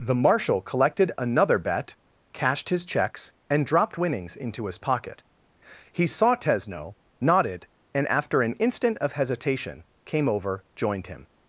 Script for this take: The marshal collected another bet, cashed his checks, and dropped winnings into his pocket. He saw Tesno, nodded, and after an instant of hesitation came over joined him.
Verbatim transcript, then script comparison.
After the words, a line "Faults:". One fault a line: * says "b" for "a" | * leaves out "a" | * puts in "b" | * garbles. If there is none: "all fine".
The marshal collected another bet, cashed his checks, and dropped winnings into his pocket. He saw Tesno, nodded, and after an instant of hesitation came over joined him.
Faults:
all fine